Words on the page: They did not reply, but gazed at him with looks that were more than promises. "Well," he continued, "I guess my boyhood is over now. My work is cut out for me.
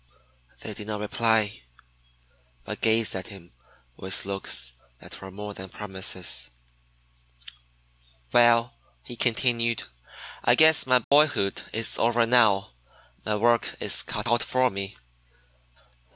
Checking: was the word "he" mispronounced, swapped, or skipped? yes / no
no